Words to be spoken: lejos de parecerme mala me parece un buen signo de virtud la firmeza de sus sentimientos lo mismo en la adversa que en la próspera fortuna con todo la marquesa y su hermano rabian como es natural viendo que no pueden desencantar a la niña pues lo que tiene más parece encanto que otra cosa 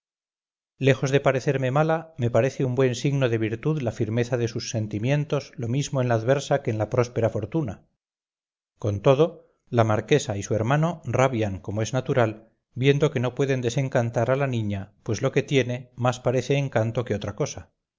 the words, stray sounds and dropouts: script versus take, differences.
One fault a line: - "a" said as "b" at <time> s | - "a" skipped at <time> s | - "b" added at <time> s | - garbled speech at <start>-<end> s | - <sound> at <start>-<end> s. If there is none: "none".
none